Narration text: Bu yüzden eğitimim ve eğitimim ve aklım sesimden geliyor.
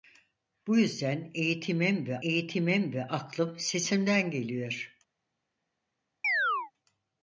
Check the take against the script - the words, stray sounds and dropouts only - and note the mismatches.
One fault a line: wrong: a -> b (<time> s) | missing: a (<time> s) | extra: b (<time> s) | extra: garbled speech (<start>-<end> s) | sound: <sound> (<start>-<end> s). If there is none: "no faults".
sound: chirp (6.2-6.7 s)